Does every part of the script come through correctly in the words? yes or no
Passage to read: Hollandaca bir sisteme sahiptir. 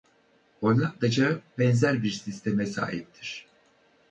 no